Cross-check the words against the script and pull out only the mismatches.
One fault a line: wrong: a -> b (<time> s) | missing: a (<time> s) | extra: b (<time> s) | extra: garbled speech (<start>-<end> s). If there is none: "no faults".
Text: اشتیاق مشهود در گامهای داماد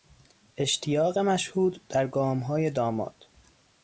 no faults